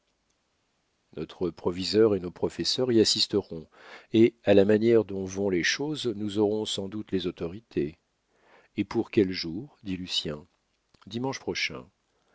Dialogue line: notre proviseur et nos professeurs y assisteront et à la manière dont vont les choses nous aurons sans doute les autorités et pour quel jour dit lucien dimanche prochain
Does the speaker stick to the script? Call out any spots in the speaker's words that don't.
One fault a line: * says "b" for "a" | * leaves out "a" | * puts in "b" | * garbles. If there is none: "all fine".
all fine